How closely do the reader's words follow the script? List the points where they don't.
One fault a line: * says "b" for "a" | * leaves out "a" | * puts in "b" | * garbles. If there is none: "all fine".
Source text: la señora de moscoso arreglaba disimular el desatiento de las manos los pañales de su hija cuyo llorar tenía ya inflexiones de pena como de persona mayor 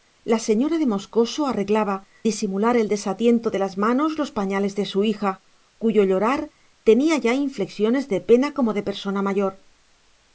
all fine